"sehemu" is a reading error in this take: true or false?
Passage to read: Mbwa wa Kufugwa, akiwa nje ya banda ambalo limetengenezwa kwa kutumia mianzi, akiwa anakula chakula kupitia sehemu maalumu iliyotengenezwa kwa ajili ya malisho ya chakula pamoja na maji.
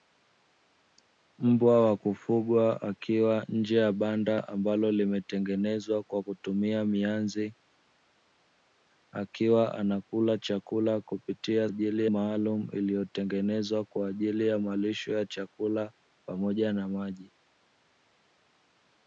true